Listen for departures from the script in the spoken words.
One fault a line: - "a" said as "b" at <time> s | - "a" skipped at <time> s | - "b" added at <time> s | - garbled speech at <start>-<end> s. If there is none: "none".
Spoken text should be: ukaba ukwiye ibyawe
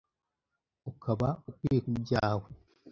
none